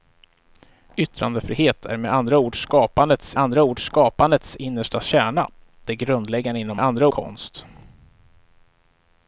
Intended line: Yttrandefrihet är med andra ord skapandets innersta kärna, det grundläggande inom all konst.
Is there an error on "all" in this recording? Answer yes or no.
yes